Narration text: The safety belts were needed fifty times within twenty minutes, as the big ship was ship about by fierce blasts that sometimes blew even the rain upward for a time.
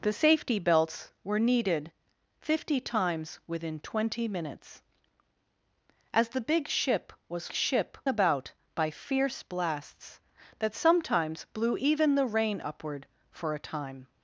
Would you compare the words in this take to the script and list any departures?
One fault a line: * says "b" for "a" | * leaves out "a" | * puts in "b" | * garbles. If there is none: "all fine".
all fine